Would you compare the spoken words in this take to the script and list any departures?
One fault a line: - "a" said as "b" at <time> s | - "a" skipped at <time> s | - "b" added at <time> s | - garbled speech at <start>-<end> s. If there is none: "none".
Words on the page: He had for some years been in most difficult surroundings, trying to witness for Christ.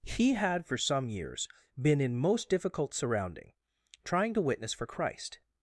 - "surroundings" said as "surrounding" at 2.9 s